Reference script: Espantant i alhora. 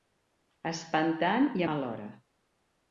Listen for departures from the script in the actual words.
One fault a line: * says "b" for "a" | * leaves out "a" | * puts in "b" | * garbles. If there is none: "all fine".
all fine